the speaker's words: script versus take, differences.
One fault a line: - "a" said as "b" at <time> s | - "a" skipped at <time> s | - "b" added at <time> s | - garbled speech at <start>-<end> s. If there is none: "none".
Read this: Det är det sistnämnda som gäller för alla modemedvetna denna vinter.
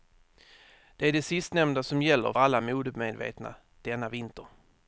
- "för" skipped at 2.3 s